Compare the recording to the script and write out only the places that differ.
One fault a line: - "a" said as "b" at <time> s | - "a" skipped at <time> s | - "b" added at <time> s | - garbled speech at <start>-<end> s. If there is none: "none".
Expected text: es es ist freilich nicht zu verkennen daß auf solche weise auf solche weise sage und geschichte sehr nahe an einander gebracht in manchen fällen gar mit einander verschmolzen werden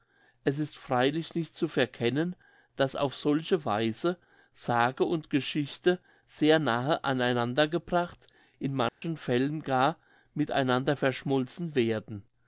- "es" skipped at 0.6 s
- "auf solche weise" skipped at 4.2 s